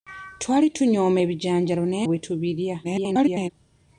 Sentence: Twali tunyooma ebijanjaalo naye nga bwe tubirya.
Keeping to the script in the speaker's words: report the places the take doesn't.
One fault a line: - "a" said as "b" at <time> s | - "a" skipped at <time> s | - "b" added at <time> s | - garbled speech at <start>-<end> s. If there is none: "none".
- "nga" skipped at 2.1 s
- garbled speech at 2.8-3.5 s